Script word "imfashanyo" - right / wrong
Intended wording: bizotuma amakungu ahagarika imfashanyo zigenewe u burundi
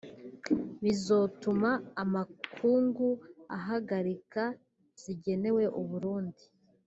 wrong